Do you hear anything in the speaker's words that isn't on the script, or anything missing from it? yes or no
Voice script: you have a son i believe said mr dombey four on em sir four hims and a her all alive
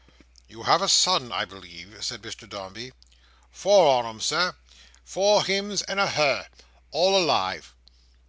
no